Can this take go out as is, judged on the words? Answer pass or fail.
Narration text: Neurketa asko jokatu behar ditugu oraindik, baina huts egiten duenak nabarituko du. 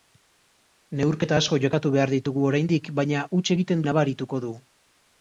fail